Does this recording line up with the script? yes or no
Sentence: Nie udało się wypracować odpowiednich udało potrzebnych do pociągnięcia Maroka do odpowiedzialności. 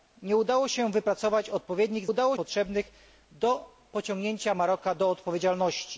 yes